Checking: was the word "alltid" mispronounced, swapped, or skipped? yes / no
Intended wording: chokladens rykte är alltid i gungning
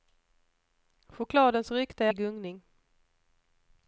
yes